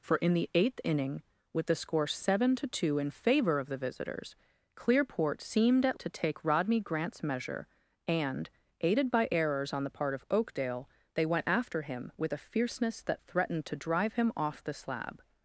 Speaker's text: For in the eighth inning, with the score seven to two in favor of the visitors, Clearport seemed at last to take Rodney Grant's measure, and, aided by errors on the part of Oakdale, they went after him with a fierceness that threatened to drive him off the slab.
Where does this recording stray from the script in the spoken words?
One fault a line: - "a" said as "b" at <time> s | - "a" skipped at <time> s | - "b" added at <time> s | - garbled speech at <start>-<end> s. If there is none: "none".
- "last" skipped at 6.0 s